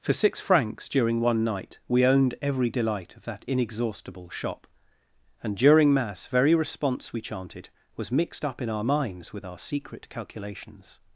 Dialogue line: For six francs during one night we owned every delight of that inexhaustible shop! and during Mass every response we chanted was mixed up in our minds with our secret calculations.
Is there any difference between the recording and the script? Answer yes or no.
yes